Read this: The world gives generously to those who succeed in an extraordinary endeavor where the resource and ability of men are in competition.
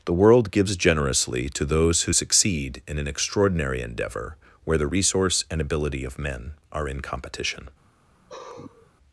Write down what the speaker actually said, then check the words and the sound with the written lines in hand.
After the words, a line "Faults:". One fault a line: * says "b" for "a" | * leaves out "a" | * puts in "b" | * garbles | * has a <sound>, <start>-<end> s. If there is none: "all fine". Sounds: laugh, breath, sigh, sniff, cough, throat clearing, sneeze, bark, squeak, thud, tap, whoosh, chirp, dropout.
The world gives generously to those who succeed in an extraordinary endeavor where the resource and ability of men are in competition.
Faults:
* has a sigh, 8.1-8.9 s